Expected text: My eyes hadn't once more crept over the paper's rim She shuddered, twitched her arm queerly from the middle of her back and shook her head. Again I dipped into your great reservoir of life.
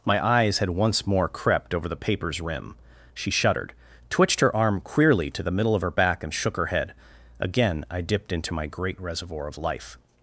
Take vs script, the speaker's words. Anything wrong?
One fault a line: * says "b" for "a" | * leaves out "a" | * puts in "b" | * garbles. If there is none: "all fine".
* says "had" for "hadn't"
* says "to" for "from"
* says "my" for "your"